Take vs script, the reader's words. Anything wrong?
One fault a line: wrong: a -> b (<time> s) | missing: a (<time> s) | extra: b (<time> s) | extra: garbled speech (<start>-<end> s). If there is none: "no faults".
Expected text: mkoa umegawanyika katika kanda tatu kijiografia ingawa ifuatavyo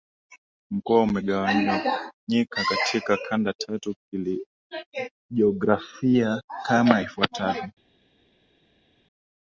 wrong: ingawa -> kama (6.7 s)